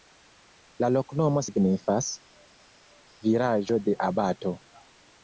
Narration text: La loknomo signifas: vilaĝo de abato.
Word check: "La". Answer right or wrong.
right